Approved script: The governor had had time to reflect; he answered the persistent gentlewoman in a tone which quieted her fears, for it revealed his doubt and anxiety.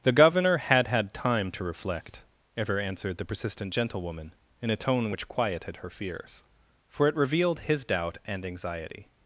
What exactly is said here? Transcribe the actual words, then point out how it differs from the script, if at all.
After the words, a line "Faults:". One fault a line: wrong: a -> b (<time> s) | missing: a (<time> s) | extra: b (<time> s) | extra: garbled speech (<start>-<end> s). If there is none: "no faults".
The governor had had time to reflect; ever answered the persistent gentlewoman in a tone which quieted her fears, for it revealed his doubt and anxiety.
Faults:
wrong: he -> ever (2.6 s)